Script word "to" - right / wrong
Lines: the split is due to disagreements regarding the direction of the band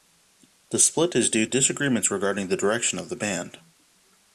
wrong